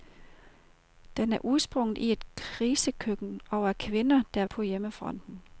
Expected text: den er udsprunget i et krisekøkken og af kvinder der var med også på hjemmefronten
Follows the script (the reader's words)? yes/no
no